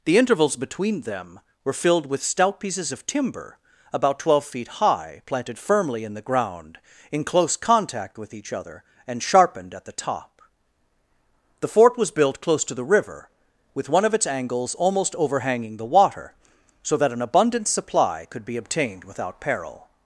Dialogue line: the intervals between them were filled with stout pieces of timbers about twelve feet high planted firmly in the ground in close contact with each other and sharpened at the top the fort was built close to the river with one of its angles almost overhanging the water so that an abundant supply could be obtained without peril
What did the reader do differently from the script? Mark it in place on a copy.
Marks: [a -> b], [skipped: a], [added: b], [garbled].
the intervals between them were filled with stout pieces of [timbers -> timber] about twelve feet high planted firmly in the ground in close contact with each other and sharpened at the top the fort was built close to the river with one of its angles almost overhanging the water so that an abundant supply could be obtained without peril